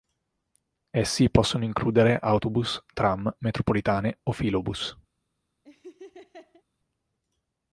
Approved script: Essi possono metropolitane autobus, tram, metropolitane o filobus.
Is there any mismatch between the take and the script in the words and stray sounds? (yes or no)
yes